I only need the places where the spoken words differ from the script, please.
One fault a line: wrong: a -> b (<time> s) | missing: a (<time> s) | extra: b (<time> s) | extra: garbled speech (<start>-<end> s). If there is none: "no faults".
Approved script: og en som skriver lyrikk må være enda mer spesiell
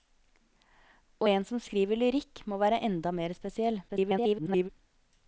extra: garbled speech (3.9-4.7 s)